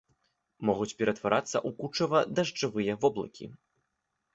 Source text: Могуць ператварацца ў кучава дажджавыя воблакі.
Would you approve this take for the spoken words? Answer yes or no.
yes